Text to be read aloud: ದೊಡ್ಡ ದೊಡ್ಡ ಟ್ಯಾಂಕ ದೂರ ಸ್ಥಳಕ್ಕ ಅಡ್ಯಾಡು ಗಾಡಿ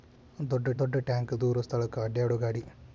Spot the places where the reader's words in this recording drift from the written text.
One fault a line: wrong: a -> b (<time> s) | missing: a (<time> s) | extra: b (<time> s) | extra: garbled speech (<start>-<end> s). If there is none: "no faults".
no faults